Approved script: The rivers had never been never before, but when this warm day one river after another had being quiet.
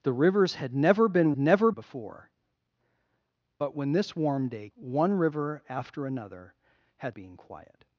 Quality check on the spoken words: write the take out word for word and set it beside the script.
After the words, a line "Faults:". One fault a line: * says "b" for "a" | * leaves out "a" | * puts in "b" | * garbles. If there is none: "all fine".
The rivers had never been never before, but when this warm day one river after another had being quiet.
Faults:
all fine